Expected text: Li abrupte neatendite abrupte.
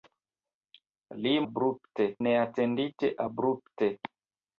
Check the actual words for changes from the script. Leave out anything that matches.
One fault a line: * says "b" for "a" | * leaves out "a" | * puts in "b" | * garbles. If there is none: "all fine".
all fine